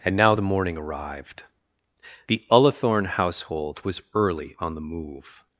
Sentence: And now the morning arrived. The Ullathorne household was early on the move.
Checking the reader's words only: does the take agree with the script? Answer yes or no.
yes